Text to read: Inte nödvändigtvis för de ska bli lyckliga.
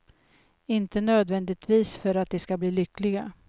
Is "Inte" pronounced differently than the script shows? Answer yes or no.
no